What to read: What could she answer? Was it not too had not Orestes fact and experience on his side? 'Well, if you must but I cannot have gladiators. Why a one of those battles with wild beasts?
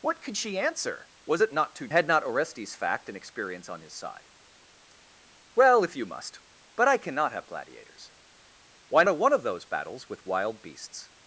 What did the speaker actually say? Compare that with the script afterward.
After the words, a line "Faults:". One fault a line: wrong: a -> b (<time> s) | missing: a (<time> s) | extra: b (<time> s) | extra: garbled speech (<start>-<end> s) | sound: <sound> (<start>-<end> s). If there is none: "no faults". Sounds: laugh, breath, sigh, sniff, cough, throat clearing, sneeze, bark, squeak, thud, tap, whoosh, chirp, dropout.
What could she answer? Was it not too had not Orestes fact and experience on his side? 'Well, if you must but I cannot have gladiators. Why a one of those battles with wild beasts?
Faults:
no faults